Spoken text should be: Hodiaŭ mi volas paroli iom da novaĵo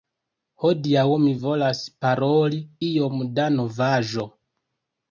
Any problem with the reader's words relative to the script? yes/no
no